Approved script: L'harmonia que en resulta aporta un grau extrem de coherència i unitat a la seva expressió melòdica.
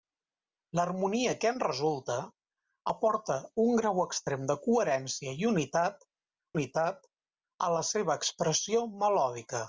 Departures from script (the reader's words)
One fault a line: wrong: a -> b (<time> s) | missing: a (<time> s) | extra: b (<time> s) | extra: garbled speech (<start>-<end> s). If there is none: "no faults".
extra: unitat (6.5 s)